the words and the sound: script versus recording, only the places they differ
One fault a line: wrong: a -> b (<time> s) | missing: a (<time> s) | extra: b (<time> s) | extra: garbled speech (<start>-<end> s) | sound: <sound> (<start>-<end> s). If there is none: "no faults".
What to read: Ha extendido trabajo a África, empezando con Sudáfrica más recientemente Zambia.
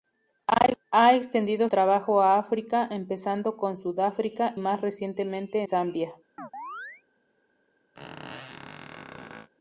sound: chirp (6.4-7.0 s)
sound: squeak (7.9-9.5 s)